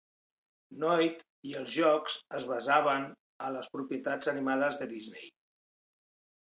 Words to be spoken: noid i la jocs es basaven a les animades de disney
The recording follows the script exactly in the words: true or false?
false